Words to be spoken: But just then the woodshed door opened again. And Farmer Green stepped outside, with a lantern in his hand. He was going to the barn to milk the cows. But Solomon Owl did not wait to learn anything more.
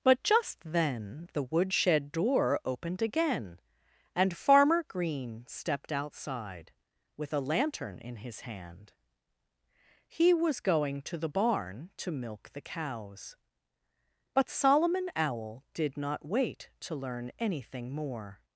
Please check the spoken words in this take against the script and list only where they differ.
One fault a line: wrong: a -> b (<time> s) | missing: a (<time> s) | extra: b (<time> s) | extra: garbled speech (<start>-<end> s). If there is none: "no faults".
no faults